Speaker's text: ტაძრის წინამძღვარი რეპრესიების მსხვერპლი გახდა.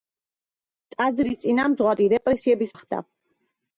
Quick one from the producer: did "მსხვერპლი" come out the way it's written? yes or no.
no